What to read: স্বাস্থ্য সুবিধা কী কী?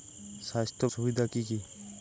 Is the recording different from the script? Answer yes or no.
no